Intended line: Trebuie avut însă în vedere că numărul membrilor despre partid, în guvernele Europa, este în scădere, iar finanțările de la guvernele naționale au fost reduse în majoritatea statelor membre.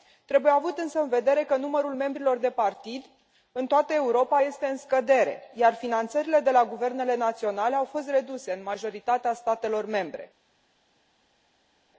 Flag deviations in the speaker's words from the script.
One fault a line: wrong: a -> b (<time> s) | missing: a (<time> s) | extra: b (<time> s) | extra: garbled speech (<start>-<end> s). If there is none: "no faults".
wrong: despre -> de (2.4 s)
wrong: guvernele -> toată (3.7 s)